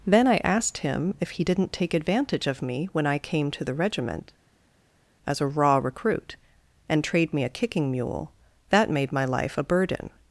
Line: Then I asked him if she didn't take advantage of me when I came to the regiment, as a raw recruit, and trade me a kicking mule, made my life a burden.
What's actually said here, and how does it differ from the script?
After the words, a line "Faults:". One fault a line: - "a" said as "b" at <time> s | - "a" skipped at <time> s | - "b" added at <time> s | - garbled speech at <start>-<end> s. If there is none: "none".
Then I asked him if he didn't take advantage of me when I came to the regiment, as a raw recruit, and trade me a kicking mule, that made my life a burden.
Faults:
- "she" said as "he" at 1.3 s
- "that" added at 8.7 s